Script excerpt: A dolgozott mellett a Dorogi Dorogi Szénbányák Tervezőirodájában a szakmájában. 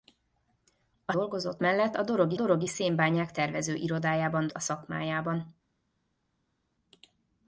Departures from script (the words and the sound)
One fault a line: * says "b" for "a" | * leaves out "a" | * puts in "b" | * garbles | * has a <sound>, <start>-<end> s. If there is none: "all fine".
all fine